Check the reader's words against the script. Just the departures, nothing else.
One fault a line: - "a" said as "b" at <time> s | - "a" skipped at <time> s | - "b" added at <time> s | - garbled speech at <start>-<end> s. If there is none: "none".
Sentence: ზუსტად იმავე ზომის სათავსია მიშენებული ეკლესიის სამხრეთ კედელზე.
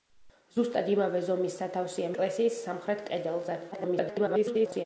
- "მიშენებული" skipped at 2.1 s
- garbled speech at 3.7-4.8 s